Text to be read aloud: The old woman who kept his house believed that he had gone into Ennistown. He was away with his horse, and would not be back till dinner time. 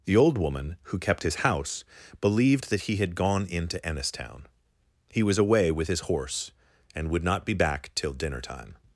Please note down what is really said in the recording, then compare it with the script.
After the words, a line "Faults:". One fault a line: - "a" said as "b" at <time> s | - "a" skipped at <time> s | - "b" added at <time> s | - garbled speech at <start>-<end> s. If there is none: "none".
The old woman who kept his house believed that he had gone into Ennistown. He was away with his horse, and would not be back till dinner time.
Faults:
none